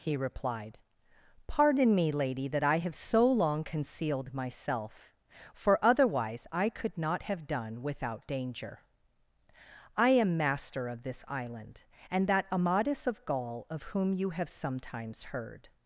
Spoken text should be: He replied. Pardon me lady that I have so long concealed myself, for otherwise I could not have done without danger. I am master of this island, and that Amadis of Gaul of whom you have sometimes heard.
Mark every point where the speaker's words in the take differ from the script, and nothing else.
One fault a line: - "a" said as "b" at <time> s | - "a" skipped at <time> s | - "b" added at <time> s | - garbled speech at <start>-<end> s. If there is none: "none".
none